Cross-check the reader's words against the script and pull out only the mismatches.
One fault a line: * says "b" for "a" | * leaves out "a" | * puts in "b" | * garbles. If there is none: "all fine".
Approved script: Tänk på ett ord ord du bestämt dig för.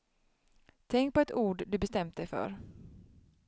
* leaves out "ord"